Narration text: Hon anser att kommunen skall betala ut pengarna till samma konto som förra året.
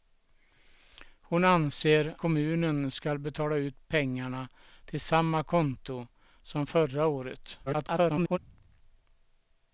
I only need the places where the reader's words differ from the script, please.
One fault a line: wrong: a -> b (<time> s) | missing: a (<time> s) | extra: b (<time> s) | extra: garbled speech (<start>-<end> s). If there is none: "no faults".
missing: att (2.1 s)
extra: garbled speech (7.7-8.4 s)